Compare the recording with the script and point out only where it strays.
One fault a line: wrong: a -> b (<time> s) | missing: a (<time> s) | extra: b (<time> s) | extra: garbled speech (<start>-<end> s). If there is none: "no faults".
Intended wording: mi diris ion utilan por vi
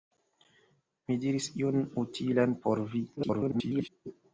extra: garbled speech (3.2-3.9 s)